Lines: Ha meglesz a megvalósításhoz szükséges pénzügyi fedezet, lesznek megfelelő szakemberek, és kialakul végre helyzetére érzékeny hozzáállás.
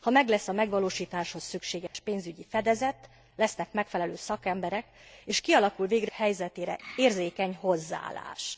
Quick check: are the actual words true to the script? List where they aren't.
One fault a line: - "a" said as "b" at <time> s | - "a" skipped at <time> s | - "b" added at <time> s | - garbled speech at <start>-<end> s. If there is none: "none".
none